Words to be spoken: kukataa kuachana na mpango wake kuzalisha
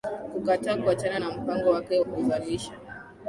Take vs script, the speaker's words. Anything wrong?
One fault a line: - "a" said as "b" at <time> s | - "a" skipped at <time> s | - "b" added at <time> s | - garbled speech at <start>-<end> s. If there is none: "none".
none